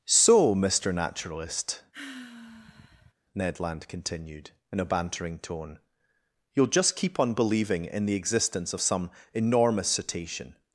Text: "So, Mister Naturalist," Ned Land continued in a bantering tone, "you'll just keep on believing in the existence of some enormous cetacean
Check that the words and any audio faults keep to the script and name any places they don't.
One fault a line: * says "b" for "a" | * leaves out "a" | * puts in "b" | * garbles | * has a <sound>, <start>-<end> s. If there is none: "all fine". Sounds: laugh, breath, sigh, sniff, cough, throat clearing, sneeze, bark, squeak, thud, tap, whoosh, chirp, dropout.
* has a sigh, 1.9-3.1 s